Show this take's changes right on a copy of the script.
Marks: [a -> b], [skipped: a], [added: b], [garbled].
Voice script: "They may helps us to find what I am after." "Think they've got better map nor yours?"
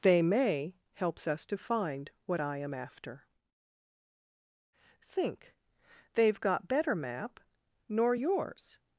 "They may helps us to find what I am after." "Think they've got better map nor yours?"